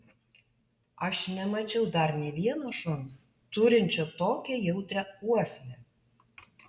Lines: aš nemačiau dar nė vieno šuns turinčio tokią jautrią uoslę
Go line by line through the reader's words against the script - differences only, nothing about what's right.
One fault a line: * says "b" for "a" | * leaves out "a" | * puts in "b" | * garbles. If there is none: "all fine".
all fine